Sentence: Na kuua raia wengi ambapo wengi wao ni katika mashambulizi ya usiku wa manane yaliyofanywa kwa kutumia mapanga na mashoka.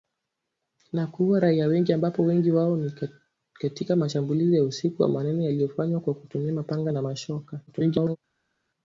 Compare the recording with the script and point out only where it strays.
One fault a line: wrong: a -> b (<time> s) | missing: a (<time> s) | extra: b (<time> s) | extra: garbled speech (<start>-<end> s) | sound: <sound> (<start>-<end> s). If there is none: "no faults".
extra: garbled speech (7.7-8.2 s)